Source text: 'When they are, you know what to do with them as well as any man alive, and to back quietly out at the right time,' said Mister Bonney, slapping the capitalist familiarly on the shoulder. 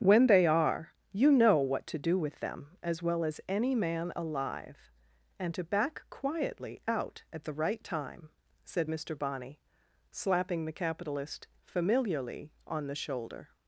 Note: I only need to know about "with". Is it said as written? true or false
true